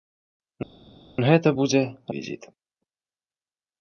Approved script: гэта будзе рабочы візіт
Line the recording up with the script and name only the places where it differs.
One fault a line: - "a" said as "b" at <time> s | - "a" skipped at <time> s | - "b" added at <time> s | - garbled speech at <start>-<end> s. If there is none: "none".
- "рабочы" skipped at 1.8 s